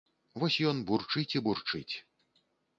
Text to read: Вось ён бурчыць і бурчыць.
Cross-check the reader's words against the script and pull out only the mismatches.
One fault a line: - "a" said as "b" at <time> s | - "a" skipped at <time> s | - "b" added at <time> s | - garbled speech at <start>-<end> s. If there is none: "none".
none